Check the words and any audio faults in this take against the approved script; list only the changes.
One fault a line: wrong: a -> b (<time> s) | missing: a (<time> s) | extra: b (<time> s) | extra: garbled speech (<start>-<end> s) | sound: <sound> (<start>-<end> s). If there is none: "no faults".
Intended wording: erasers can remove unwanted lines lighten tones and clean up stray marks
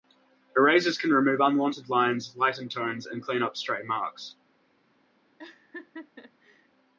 sound: laugh (5.4-6.7 s)